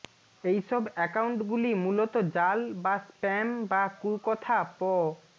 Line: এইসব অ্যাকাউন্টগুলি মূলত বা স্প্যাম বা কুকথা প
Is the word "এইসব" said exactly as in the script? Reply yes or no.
yes